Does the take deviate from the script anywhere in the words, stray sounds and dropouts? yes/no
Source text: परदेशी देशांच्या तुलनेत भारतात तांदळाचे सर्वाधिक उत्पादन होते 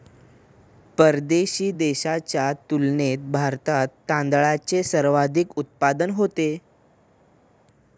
no